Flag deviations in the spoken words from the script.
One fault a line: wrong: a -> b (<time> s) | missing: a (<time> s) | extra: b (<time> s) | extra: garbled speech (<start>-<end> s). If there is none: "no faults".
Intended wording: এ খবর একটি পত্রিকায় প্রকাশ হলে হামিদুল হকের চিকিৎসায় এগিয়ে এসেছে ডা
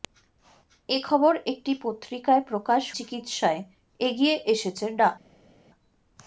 missing: হলে হামিদুল হকের (2.8 s)